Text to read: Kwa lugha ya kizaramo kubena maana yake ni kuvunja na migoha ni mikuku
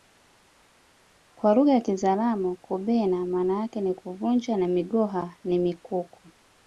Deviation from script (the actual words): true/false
false